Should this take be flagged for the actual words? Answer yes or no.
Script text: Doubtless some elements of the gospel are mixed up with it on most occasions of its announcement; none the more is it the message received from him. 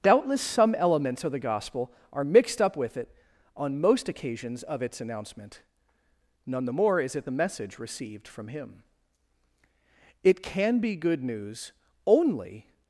yes